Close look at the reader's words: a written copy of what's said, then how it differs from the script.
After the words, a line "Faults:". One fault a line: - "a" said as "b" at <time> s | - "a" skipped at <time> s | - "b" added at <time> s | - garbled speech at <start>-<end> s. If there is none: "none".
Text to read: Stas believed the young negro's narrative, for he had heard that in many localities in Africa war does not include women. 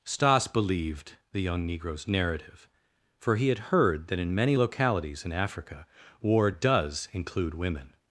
Stas believed the young negro's narrative, for he had heard that in many localities in Africa war does include women.
Faults:
- "not" skipped at 7.1 s